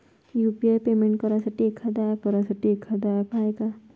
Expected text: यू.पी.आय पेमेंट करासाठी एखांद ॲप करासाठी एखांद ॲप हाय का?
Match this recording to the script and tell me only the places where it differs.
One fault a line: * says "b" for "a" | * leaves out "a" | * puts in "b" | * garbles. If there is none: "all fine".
all fine